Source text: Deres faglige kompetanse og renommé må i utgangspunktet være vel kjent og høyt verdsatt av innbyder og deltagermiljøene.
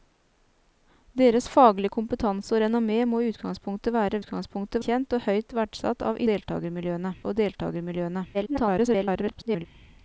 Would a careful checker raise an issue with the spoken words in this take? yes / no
yes